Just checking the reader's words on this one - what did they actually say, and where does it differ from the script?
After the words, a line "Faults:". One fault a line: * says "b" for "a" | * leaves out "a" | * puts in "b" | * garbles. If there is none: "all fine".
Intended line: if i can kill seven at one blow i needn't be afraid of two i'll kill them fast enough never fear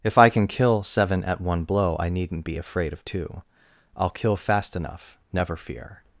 if i can kill seven at one blow i needn't be afraid of two i'll kill fast enough never fear
Faults:
* leaves out "them"